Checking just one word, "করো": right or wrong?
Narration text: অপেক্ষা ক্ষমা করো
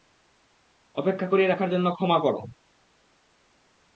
right